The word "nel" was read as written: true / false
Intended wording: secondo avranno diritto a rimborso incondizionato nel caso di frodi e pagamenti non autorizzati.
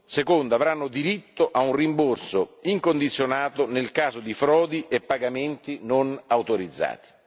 true